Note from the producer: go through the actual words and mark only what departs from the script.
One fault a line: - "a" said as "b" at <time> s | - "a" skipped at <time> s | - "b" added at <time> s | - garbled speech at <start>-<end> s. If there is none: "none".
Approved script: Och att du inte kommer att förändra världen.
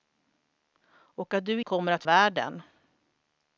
- "inte" skipped at 1.6 s
- "förändra" skipped at 2.0 s